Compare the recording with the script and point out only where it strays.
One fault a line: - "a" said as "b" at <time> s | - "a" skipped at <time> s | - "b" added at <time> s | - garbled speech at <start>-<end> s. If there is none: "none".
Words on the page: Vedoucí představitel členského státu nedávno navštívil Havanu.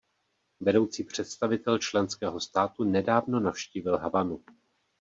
none